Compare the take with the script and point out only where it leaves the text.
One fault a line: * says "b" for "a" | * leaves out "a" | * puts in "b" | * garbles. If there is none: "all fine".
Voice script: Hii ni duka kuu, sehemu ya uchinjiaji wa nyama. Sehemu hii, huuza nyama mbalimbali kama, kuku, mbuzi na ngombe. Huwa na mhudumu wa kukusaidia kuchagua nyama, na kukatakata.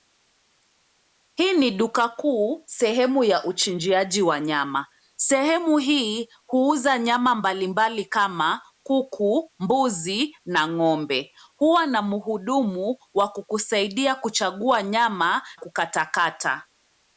* leaves out "na"